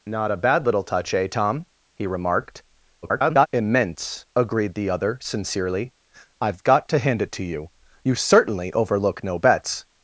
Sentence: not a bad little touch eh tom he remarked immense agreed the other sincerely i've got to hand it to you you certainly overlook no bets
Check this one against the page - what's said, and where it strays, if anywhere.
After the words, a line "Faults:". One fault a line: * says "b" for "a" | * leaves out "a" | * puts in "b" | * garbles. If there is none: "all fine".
not a bad little touch eh tom he remarked [garbled] immense agreed the other sincerely i've got to hand it to you you certainly overlook no bets
Faults:
* garbles